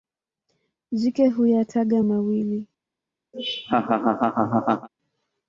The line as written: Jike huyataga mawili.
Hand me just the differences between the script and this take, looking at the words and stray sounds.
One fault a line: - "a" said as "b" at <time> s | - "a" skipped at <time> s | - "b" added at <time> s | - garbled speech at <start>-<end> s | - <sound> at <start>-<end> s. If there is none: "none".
- laugh at 3.3-4.9 s